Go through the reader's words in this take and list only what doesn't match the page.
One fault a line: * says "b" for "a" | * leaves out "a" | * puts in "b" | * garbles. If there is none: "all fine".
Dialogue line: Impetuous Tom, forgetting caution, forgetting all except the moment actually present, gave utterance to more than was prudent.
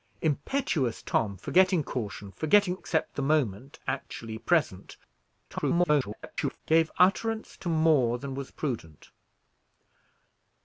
* leaves out "all"
* garbles